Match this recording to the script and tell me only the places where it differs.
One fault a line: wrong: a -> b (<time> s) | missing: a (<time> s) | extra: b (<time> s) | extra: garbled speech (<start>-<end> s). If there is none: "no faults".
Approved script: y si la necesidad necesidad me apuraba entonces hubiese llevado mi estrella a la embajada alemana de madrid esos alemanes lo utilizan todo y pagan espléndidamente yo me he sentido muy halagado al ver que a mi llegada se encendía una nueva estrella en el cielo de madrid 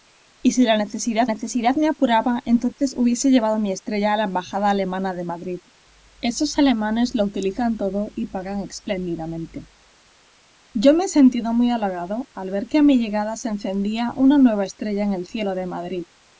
no faults